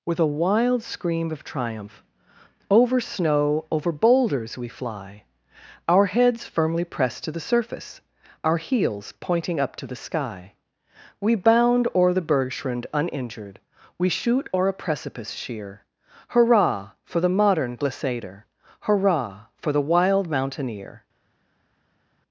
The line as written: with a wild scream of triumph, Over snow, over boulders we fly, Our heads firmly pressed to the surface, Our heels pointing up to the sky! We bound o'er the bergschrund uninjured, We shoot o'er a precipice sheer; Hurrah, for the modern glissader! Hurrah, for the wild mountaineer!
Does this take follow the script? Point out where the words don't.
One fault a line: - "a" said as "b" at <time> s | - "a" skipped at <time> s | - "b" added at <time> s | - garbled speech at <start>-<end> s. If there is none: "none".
none